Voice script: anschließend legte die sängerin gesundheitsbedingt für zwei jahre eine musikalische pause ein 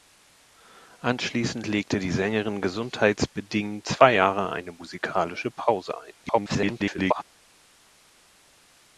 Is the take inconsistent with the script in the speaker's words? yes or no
yes